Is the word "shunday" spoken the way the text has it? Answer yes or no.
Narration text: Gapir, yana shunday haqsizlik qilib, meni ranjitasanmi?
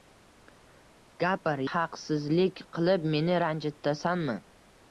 no